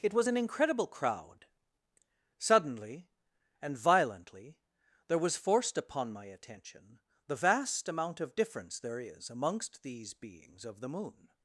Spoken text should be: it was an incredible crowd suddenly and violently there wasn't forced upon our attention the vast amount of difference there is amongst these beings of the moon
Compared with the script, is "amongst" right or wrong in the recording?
right